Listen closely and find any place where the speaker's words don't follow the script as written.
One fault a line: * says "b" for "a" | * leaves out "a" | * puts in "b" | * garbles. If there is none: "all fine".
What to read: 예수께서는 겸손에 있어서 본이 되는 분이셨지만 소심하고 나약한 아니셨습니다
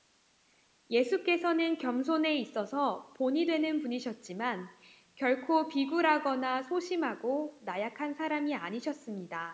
* puts in "결코 비굴하거나"
* puts in "사람이"